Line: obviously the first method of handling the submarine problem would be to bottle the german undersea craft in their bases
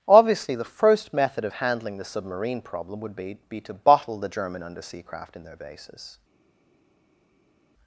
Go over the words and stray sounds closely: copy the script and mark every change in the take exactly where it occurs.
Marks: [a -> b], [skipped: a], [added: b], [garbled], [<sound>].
obviously the first method of handling the submarine problem would be [added: be] to bottle the german undersea craft in their bases